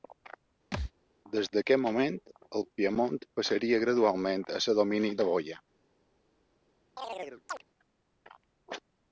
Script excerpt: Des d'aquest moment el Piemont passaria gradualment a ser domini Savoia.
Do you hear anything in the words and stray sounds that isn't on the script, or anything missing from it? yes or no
yes